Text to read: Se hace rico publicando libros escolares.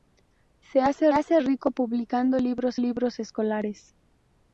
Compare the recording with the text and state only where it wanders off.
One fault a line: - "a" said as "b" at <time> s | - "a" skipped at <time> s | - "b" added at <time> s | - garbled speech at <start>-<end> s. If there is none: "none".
- "hace" added at 1.1 s
- "libros" added at 2.7 s